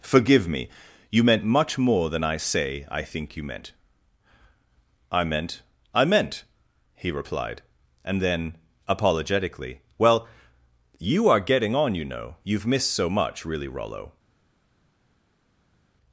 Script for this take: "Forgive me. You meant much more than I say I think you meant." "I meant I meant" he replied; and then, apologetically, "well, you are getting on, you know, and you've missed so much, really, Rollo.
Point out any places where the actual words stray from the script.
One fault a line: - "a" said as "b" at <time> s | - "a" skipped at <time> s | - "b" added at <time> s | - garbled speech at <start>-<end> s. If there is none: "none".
- "and" skipped at 12.3 s